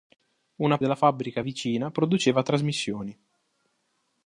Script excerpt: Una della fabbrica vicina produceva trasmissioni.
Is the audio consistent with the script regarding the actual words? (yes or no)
yes